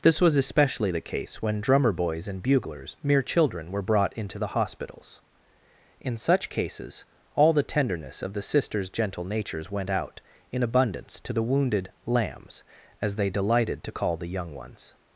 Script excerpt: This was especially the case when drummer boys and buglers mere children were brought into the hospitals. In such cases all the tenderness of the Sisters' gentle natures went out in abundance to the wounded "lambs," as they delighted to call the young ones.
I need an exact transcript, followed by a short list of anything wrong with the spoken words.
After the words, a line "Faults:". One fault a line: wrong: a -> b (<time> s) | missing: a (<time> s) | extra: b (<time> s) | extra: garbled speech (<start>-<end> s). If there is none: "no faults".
This was especially the case when drummer boys and buglers mere children were brought into the hospitals. In such cases all the tenderness of the Sisters' gentle natures went out in abundance to the wounded "lambs," as they delighted to call the young ones.
Faults:
no faults